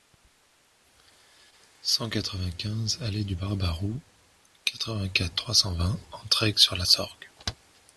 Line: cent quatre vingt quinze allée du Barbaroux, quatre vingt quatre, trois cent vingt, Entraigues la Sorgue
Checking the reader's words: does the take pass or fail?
fail